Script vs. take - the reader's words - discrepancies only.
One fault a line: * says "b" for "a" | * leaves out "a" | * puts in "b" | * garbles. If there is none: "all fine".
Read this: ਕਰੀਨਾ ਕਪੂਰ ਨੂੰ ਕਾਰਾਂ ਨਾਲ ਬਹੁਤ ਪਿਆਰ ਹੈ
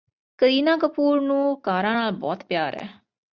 all fine